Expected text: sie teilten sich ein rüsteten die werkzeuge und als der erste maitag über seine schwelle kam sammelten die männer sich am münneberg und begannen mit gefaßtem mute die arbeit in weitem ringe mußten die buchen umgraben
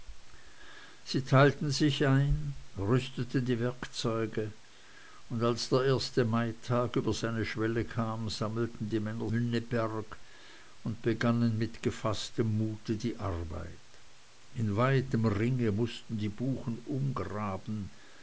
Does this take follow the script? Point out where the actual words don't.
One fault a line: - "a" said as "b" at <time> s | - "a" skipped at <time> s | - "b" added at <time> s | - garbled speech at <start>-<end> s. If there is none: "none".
- "sich am" skipped at 9.3 s